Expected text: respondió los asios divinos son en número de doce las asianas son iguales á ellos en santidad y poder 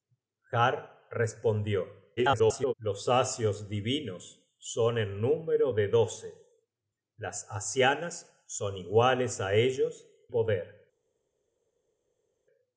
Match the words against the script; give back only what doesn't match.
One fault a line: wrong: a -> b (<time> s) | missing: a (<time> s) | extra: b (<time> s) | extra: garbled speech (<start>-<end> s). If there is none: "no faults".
extra: garbled speech (2.2-2.7 s)
missing: en santidad y (10.1 s)